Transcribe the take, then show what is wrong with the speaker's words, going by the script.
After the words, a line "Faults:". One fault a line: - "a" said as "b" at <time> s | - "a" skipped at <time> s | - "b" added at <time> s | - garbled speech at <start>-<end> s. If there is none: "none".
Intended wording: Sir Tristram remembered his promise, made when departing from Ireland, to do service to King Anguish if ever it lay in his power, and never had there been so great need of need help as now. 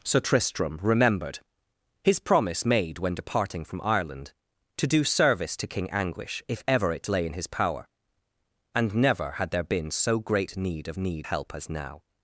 Sir Tristram remembered his promise, made when departing from Ireland, to do service to King Anguish if ever it lay in his power, and never had there been so great need of need help as now.
Faults:
none